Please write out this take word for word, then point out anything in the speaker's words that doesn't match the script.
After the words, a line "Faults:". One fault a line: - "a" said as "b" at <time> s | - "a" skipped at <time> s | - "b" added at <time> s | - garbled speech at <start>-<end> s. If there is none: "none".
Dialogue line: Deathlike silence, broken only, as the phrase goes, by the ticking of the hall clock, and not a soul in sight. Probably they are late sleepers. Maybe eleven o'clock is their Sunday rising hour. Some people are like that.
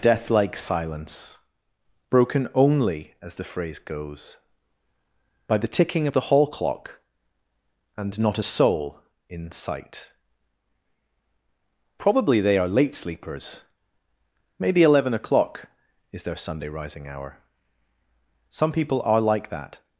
Deathlike silence, broken only, as the phrase goes, by the ticking of the hall clock, and not a soul in sight. Probably they are late sleepers. Maybe eleven o'clock is their Sunday rising hour. Some people are like that.
Faults:
none